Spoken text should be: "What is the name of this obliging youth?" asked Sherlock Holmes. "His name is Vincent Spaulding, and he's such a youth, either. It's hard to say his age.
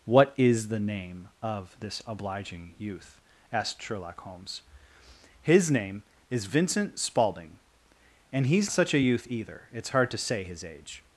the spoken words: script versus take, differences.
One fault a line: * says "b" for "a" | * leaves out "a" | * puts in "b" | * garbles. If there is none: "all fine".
all fine